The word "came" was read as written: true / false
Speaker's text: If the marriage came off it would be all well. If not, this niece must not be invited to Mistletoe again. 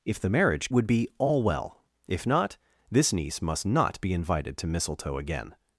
false